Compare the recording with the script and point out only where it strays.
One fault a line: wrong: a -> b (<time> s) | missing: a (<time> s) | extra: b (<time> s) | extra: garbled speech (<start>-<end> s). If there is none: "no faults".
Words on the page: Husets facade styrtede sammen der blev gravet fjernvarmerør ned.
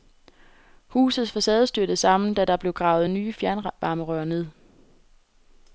extra: da (2.3 s)
extra: nye (3.1 s)